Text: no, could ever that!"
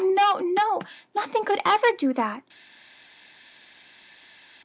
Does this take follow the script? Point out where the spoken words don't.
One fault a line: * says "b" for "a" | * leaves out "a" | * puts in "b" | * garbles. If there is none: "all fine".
* puts in "no nothing"
* puts in "do"